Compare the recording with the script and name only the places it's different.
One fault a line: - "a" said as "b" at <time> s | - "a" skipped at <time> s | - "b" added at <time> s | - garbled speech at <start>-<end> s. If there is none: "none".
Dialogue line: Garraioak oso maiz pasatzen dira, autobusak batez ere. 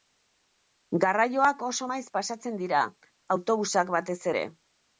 none